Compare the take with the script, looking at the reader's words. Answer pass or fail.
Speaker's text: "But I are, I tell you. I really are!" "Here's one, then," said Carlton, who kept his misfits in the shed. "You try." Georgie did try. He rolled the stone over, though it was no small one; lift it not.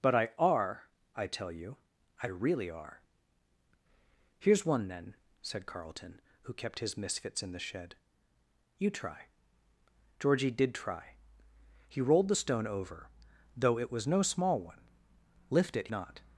pass